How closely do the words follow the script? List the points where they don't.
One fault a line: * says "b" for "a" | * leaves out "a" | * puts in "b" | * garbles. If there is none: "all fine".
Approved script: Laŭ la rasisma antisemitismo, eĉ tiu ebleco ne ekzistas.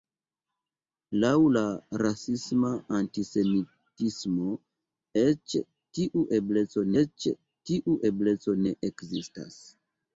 * puts in "eĉ tiu ebleco"